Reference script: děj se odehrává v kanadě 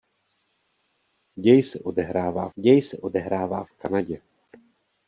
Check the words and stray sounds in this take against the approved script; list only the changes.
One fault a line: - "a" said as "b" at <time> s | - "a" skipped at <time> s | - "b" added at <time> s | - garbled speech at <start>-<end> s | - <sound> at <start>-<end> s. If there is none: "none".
- "děj se odehrává" added at 2.5 s